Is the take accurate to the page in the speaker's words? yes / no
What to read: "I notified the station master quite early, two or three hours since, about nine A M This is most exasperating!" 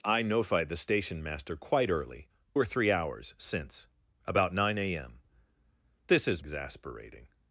no